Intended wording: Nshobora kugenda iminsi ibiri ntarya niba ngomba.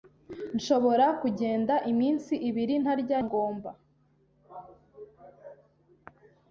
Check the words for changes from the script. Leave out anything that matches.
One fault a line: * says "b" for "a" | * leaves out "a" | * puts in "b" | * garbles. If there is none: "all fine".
* leaves out "niba"